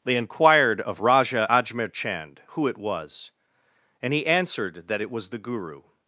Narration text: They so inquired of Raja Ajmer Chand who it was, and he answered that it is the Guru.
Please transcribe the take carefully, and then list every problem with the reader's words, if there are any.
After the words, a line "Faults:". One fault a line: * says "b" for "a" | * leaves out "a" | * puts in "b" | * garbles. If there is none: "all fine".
They inquired of Raja Ajmer Chand who it was, and he answered that it was the Guru.
Faults:
* leaves out "so"
* says "was" for "is"